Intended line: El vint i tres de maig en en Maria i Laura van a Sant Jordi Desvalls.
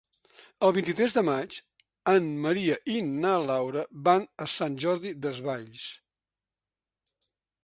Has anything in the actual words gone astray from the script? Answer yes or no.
yes